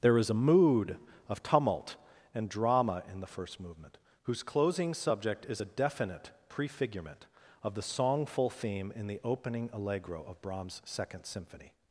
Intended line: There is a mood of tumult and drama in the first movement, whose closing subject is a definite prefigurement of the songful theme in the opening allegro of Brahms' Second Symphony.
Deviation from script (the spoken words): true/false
false